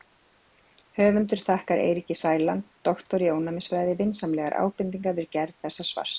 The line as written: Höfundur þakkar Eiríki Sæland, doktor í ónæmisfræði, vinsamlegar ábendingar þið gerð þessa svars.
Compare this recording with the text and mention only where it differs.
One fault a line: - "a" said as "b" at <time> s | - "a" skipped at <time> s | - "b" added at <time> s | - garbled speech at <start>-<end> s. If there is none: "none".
- "þið" said as "við" at 5.2 s